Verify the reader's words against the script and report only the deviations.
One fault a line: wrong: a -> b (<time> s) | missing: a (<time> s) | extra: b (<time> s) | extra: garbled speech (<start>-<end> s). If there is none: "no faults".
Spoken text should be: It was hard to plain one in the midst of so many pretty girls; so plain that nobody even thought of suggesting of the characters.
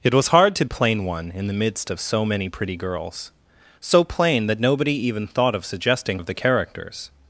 no faults